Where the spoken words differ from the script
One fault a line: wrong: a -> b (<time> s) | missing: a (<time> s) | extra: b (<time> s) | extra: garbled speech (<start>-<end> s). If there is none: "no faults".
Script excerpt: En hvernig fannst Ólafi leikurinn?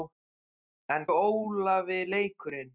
missing: hvernig fannst (1.1 s)